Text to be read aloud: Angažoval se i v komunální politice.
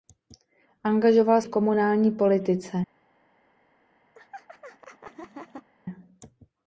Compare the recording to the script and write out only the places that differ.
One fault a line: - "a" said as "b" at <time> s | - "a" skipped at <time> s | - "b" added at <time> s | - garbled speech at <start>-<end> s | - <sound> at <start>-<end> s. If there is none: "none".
- "se i" skipped at 1.4 s
- laugh at 4.1-5.7 s